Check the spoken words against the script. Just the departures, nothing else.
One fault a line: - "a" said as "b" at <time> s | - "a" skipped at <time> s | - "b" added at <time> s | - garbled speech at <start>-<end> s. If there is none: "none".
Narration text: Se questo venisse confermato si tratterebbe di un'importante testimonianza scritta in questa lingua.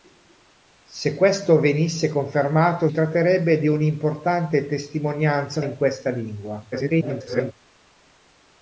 - "si" skipped at 2.9 s
- "scritta" skipped at 5.6 s
- garbled speech at 6.7-7.5 s